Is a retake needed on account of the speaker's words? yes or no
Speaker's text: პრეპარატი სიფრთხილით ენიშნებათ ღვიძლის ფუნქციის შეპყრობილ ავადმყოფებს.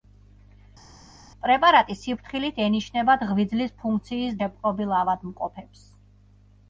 no